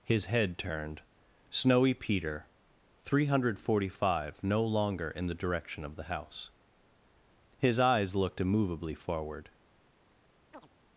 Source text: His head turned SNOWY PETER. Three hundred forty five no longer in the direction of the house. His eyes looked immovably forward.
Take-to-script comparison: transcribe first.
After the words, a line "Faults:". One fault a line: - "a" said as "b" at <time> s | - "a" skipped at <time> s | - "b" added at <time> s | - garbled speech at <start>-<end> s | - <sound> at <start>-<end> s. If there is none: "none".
His head turned SNOWY PETER. Three hundred forty five no longer in the direction of the house. His eyes looked immovably forward.
Faults:
- chirp at 10.5-10.7 s